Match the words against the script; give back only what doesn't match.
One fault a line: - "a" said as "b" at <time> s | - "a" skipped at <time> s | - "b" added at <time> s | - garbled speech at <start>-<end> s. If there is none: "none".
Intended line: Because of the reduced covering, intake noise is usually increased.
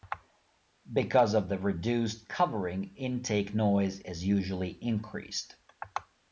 none